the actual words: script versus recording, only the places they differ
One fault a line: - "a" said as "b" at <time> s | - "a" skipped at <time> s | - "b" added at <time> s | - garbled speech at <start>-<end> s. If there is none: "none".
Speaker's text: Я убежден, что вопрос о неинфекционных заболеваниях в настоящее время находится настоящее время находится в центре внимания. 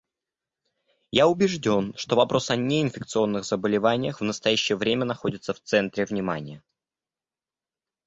- "настоящее время находится" skipped at 5.5 s